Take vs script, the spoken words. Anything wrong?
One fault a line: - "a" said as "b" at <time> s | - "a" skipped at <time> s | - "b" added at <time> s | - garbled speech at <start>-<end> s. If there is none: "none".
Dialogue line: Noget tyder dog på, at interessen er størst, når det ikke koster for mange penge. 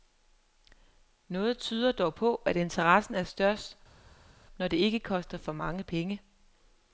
none